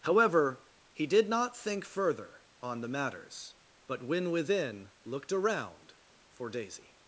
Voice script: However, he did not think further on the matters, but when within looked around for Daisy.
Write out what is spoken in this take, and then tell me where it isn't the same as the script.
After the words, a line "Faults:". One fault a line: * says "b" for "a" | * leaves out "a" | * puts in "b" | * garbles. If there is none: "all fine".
However, he did not think further on the matters, but when within looked around for Daisy.
Faults:
all fine